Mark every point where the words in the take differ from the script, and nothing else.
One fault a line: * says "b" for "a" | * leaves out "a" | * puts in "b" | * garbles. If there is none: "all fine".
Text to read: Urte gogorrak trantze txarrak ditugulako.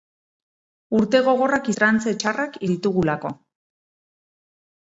all fine